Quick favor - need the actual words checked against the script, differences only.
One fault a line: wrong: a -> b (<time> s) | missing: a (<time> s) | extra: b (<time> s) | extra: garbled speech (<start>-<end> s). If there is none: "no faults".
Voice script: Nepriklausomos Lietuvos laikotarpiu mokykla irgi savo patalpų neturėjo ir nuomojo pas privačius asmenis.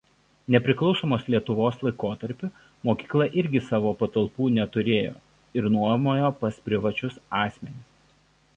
no faults